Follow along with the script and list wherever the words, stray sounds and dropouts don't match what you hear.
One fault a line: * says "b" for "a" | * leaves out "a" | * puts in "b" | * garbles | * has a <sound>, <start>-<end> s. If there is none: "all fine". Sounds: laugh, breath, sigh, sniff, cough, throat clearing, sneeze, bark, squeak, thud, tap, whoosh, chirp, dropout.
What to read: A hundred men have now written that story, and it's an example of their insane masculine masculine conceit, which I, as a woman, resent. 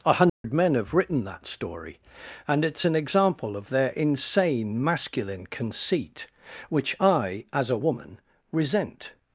* has a dropout, 0.3-0.4 s
* leaves out "now"
* leaves out "masculine"